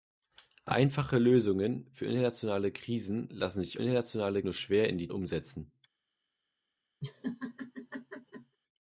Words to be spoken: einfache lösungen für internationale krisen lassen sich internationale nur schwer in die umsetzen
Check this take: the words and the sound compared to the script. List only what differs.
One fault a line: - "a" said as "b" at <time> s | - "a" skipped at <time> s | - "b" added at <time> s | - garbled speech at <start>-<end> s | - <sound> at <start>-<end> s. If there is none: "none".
- laugh at 7.0-8.6 s